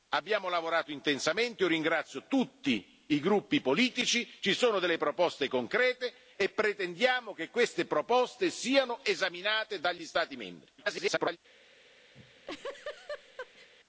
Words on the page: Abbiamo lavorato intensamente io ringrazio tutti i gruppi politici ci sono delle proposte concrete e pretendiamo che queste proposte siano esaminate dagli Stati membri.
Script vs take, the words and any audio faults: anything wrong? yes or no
yes